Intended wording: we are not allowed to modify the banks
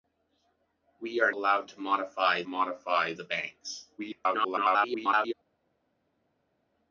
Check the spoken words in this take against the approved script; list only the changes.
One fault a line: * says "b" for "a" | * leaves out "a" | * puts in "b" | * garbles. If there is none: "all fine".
* leaves out "not"
* puts in "modify"
* garbles